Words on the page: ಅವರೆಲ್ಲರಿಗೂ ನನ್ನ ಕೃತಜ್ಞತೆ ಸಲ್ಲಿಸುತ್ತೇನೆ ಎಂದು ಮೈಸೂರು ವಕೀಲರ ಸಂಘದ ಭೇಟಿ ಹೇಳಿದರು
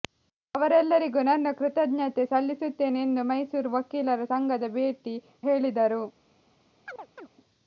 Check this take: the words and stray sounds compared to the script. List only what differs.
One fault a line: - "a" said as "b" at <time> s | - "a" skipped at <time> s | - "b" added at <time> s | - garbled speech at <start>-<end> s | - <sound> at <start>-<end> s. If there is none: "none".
- chirp at 6.9-7.3 s